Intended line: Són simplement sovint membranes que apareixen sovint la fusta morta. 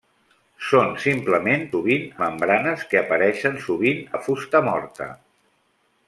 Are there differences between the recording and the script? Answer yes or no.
no